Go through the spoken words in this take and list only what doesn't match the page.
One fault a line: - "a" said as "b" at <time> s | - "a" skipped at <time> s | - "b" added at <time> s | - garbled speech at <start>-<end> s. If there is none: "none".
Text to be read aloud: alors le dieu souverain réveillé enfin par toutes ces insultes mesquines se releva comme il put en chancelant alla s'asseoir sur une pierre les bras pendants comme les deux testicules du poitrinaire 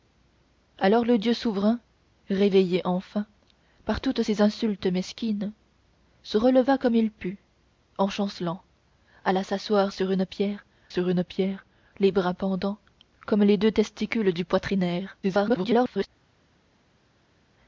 - "sur une pierre" added at 10.9 s
- garbled speech at 15.2-16.1 s